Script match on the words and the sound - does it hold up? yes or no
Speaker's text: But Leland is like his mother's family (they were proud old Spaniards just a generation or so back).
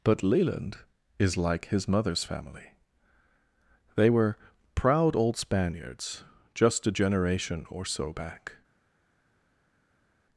yes